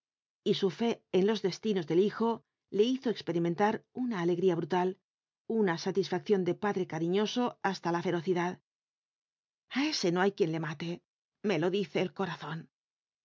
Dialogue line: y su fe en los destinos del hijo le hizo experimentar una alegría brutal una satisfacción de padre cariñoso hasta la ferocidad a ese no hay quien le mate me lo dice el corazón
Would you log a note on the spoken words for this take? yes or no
no